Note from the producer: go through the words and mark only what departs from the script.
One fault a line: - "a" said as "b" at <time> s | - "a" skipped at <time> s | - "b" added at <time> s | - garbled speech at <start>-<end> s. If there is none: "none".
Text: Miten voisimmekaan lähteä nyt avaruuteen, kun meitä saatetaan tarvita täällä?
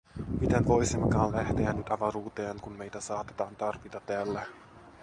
none